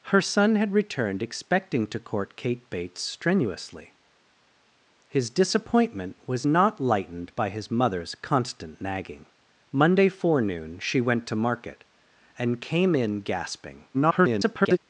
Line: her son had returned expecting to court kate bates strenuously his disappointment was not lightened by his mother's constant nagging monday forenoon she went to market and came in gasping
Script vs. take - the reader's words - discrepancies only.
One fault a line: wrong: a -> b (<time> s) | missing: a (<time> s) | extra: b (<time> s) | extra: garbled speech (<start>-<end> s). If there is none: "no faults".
extra: garbled speech (13.9-14.8 s)